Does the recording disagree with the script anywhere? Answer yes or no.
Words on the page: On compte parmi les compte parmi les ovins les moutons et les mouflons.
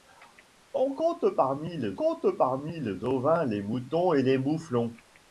no